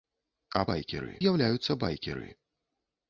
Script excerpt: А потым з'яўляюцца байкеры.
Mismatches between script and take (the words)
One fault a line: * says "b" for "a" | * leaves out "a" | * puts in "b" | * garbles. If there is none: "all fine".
* says "байкеры" for "потым"